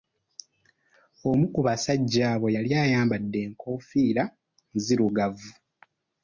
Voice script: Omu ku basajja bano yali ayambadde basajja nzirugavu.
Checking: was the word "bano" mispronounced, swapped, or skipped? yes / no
yes